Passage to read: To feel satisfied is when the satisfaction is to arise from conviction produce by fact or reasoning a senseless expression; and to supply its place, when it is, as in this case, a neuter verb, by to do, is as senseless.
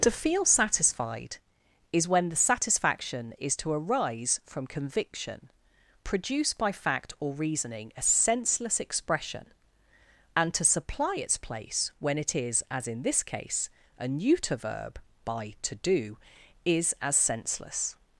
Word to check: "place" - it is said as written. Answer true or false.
true